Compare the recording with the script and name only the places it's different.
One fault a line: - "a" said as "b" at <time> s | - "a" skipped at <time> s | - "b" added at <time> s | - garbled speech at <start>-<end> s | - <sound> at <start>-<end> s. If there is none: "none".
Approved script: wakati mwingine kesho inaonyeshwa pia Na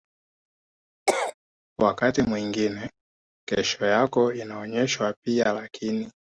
- cough at 1.1-1.3 s
- "yako" added at 3.9 s
- "Na" said as "Lakini" at 5.5 s